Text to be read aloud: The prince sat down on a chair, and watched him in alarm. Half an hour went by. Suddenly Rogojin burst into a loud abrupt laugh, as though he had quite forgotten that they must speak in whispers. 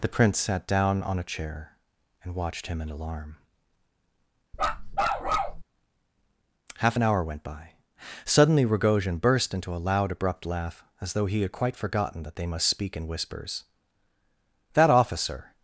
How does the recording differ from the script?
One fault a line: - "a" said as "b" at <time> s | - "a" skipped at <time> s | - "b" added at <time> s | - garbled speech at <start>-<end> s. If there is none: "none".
- "That officer" added at 14.7 s